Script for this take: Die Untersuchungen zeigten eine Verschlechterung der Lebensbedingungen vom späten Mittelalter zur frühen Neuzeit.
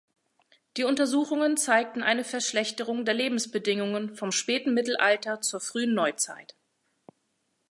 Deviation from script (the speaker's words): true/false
false